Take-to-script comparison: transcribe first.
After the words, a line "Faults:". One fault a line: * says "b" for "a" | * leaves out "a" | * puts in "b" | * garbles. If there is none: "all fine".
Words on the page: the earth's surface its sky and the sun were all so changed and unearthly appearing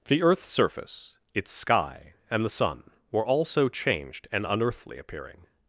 the earth's surface its sky and the sun were all so changed and unearthly appearing
Faults:
all fine